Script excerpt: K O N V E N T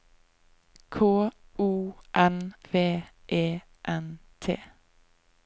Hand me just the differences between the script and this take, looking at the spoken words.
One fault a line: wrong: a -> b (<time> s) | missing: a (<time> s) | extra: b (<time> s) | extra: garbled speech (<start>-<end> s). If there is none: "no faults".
no faults